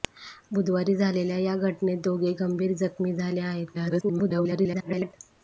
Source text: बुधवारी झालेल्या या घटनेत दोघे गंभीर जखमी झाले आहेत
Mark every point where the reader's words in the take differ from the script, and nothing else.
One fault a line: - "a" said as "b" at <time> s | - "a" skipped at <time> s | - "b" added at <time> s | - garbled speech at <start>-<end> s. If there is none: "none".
- garbled speech at 3.7-5.1 s